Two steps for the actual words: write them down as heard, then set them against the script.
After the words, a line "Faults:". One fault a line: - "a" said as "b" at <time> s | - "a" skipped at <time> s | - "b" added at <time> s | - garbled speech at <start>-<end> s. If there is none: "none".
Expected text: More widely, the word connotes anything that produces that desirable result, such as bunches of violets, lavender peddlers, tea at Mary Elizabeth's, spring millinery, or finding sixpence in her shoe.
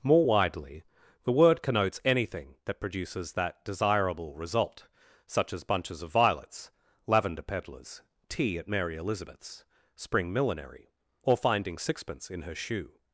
More widely, the word connotes anything that produces that desirable result, such as bunches of violets, lavender peddlers, tea at Mary Elizabeth's, spring millinery, or finding sixpence in her shoe.
Faults:
none